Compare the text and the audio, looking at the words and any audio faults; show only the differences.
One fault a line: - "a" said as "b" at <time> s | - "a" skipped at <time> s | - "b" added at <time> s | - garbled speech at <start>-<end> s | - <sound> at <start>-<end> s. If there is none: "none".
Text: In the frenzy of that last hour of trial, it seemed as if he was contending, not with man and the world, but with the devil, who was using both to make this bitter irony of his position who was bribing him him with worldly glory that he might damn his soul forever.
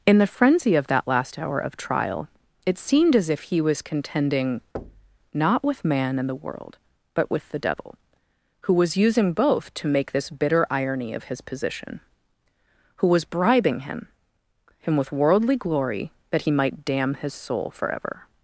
- thud at 4.7-5.2 s